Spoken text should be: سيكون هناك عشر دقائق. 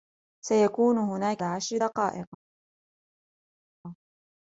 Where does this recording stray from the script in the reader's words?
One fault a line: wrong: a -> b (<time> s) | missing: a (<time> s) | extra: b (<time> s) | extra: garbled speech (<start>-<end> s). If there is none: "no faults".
no faults